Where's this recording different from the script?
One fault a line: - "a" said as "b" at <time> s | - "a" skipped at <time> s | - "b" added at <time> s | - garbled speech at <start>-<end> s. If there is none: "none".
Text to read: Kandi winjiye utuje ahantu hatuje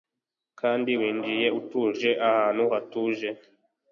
none